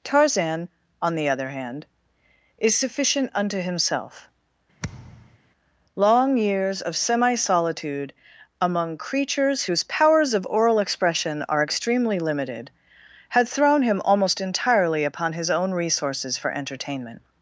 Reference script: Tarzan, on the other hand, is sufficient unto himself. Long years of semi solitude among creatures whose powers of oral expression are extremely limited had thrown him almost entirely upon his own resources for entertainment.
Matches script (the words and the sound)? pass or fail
fail